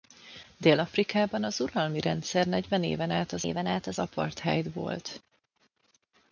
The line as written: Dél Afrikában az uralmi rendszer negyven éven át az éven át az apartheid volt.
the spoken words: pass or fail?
pass